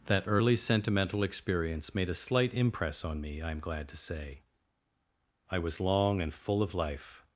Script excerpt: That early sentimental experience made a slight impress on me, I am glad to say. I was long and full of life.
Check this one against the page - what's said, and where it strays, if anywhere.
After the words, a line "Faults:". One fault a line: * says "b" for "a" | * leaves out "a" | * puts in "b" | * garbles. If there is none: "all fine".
That early sentimental experience made a slight impress on me, I am glad to say. I was long and full of life.
Faults:
all fine